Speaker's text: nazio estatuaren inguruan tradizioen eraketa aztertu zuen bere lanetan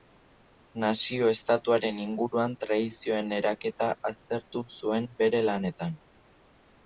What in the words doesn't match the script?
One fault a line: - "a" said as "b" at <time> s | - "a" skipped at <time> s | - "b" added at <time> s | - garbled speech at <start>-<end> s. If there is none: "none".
none